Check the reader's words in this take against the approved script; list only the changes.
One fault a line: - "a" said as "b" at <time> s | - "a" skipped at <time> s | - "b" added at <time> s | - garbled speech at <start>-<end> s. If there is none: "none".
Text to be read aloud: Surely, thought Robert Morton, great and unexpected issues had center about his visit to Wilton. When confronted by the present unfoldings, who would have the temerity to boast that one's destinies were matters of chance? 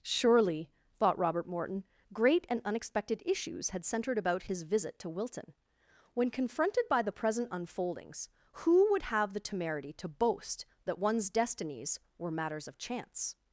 - "center" said as "centered" at 3.9 s